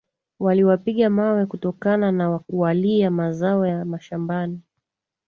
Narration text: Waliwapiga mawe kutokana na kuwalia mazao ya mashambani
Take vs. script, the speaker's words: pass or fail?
pass